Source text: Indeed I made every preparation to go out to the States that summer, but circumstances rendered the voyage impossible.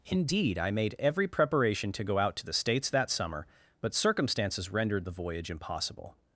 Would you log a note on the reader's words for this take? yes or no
no